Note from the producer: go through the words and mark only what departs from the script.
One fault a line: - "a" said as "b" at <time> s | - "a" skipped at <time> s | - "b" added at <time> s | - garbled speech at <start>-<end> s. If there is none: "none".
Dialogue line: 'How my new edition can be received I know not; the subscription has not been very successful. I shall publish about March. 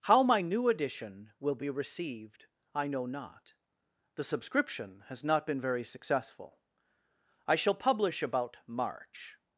- "can" said as "will" at 1.4 s